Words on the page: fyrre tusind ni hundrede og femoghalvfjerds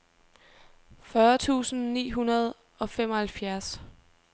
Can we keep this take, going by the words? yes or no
yes